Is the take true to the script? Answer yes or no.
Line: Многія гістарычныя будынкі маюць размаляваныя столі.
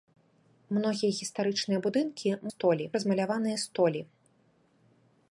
no